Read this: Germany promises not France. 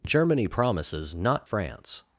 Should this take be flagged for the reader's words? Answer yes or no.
no